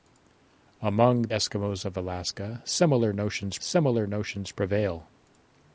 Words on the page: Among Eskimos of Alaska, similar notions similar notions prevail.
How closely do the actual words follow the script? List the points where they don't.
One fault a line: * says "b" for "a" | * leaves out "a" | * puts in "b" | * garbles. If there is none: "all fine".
all fine